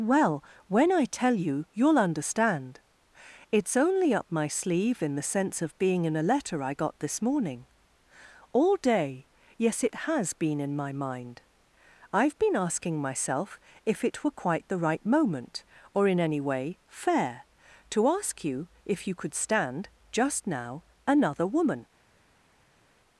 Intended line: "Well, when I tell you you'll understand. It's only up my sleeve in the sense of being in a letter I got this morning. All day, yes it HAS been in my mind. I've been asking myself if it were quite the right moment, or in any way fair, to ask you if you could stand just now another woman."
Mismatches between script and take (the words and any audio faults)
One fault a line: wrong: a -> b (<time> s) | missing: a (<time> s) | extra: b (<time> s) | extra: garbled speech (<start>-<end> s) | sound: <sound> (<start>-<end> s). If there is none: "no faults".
no faults